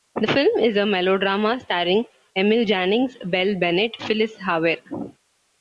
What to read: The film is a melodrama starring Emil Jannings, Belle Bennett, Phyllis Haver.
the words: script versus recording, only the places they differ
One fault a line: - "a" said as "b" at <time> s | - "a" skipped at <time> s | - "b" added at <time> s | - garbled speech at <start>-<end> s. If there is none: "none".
none